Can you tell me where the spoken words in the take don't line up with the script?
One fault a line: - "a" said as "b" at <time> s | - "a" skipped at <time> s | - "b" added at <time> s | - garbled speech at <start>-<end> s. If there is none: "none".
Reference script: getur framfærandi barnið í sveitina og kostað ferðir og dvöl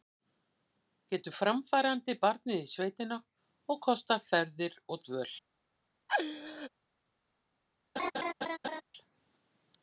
none